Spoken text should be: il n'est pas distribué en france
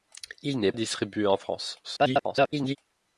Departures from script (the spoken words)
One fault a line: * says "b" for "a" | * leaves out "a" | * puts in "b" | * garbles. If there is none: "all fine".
* leaves out "pas"
* garbles